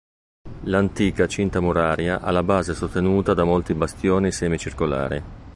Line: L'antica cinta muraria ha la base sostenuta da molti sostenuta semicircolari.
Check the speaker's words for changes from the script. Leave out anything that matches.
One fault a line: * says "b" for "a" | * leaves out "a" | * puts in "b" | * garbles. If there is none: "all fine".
* says "bastioni" for "sostenuta"